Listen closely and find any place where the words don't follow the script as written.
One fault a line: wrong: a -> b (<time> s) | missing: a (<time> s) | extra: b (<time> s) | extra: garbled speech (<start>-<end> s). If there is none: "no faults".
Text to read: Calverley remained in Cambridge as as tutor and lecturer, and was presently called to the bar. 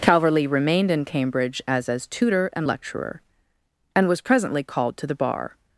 no faults